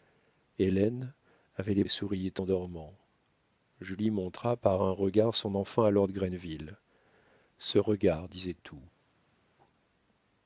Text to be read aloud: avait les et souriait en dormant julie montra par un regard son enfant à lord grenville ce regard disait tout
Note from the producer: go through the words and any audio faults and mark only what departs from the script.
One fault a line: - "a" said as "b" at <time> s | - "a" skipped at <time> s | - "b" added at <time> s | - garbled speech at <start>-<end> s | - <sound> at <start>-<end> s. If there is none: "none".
none